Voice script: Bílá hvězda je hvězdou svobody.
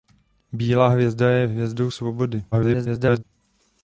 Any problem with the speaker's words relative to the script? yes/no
yes